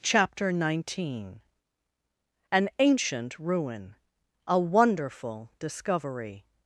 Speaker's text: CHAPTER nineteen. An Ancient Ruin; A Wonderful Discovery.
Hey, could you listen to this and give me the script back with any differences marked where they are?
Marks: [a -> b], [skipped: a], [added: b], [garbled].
CHAPTER nineteen. An Ancient Ruin; A Wonderful Discovery.